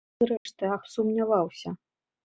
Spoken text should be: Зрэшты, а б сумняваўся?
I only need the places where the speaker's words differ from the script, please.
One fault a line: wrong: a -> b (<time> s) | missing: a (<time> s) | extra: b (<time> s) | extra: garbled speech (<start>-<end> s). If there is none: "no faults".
no faults